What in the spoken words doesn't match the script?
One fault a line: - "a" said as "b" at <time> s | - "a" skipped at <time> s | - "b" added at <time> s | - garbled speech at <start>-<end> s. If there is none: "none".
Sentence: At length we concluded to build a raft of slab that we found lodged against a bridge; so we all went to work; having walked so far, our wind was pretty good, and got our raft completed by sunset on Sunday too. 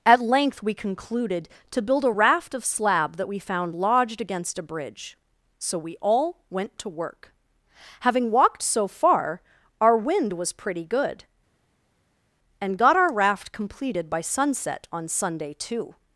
none